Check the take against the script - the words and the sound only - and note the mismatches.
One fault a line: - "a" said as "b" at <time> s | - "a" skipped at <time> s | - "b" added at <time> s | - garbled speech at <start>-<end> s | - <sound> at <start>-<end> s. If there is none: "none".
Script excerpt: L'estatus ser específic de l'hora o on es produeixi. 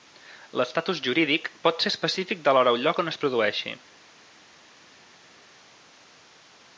- "jurídic pot" added at 1.1 s
- "lloc" added at 2.9 s